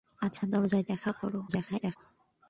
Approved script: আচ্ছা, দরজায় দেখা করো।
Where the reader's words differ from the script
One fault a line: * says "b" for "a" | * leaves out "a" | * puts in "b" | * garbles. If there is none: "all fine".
* garbles